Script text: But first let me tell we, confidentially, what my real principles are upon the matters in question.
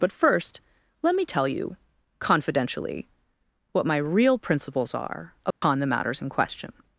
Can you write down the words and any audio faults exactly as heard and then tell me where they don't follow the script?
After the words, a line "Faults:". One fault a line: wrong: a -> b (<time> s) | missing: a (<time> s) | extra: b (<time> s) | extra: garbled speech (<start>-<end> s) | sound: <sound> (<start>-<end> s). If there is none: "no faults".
But first let me tell you, confidentially, what my real principles are upon the matters in question.
Faults:
wrong: we -> you (1.5 s)
sound: dropout (5.5-5.6 s)